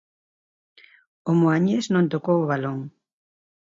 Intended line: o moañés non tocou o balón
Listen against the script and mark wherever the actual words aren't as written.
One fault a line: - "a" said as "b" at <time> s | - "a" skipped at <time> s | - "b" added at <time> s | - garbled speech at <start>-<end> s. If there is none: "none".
none